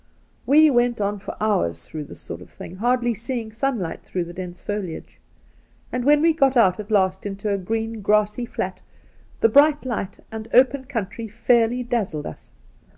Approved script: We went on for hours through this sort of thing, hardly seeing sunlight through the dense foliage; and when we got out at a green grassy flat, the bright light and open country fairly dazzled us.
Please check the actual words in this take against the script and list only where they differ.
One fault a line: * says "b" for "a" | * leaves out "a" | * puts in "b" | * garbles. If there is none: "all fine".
* puts in "last into"